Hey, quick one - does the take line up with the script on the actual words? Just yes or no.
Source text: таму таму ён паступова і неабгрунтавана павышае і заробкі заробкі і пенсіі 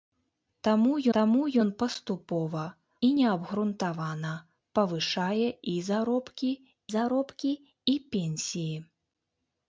yes